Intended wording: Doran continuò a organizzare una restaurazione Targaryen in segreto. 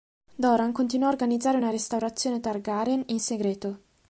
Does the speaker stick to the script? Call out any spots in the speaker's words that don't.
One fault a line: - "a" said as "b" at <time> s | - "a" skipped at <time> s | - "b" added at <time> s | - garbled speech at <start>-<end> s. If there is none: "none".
none